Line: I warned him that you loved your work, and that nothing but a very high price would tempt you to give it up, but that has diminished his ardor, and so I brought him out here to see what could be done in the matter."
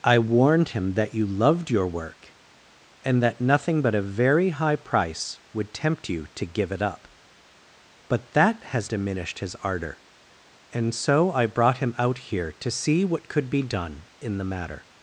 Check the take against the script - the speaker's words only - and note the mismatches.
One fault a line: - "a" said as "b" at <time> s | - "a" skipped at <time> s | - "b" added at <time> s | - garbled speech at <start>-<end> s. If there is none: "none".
none